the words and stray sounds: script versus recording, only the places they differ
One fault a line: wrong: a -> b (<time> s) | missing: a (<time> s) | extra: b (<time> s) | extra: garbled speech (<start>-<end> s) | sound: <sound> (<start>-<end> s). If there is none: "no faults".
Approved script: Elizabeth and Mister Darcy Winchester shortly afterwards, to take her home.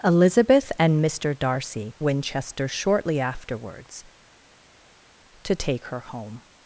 no faults